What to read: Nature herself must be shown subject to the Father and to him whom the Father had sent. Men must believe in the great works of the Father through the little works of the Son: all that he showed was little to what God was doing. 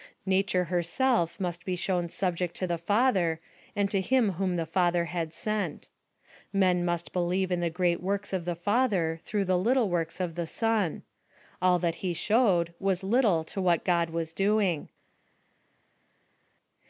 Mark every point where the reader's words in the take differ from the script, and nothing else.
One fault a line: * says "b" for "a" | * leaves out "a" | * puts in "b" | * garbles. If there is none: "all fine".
all fine